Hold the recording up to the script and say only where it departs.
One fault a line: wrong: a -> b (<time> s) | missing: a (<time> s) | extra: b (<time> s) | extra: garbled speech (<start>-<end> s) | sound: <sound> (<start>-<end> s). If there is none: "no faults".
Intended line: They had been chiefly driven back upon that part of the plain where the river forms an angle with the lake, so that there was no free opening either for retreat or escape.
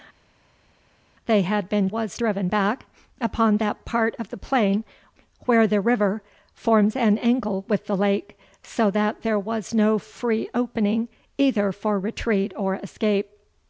wrong: chiefly -> was (1.9 s)